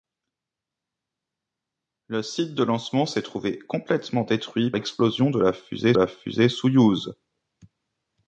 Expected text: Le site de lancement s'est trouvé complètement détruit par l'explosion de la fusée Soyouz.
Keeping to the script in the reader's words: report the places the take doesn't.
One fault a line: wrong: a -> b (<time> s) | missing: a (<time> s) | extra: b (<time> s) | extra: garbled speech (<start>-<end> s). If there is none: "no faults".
missing: par (4.7 s)
extra: la fusée (5.9 s)